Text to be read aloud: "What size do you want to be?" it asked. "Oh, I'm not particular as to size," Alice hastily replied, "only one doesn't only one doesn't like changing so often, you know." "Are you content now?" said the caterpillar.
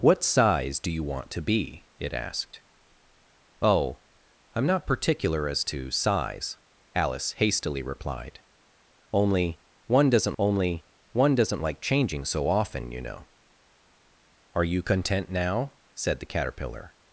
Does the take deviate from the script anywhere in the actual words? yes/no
no